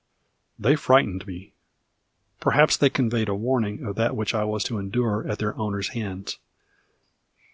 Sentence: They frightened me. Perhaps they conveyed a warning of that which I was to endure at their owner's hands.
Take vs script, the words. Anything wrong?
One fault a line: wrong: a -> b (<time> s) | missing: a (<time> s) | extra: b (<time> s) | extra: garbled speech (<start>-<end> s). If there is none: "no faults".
no faults